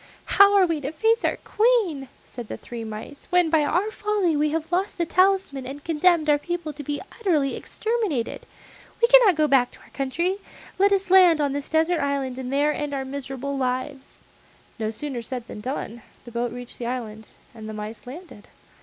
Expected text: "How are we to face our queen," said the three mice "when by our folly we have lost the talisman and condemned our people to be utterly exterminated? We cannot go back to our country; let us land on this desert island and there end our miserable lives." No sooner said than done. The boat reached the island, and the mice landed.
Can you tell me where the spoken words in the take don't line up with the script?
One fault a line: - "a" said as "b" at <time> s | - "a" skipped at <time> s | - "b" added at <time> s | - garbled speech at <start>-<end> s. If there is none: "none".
none